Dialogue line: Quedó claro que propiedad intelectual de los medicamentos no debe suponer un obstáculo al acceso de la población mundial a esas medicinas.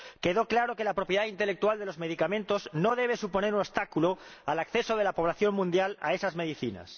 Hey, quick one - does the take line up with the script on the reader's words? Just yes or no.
no